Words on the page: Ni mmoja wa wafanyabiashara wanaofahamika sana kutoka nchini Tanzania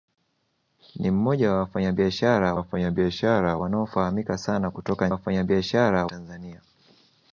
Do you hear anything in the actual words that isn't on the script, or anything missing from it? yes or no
yes